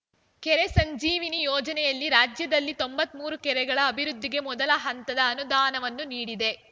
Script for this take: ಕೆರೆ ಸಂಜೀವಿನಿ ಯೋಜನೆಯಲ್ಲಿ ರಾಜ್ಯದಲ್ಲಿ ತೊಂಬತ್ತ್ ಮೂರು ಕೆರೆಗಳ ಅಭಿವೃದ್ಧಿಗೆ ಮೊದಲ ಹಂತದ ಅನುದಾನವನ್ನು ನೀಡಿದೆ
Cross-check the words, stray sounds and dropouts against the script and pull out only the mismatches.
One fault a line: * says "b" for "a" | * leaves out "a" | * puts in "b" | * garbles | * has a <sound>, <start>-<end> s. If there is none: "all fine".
all fine